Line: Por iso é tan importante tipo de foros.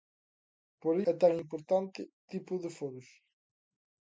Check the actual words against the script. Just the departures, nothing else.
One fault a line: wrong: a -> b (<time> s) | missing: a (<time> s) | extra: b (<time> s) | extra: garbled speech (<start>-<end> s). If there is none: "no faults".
missing: iso (0.9 s)